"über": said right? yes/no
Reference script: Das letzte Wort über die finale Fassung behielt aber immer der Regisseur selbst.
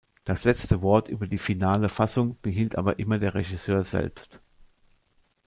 yes